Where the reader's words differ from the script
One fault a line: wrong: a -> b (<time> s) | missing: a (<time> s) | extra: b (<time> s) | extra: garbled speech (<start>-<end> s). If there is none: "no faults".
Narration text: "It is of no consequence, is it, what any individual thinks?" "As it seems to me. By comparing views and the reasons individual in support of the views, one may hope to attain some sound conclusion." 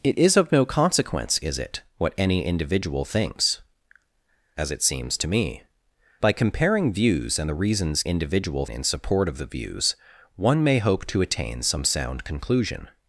no faults